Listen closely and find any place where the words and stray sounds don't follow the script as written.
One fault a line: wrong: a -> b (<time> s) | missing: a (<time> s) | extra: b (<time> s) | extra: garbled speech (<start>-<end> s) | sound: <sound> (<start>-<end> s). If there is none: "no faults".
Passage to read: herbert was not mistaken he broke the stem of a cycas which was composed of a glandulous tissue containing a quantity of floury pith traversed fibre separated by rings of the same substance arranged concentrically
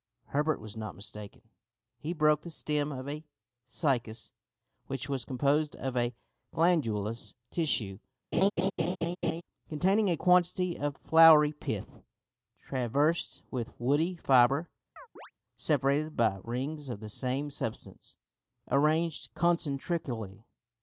sound: laugh (8.3-9.4 s)
extra: with woody (13.5 s)
sound: chirp (15.0-15.3 s)